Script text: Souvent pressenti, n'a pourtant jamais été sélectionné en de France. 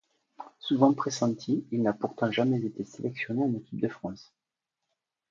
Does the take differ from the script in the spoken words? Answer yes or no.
yes